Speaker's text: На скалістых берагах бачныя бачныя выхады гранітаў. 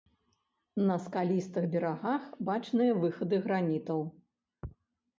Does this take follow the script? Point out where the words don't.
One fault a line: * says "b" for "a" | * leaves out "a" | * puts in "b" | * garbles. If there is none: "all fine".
* leaves out "бачныя"